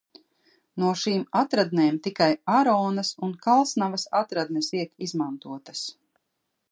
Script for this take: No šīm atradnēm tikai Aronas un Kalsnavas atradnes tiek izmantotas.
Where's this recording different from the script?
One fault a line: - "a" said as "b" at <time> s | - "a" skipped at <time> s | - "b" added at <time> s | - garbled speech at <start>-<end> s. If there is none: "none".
none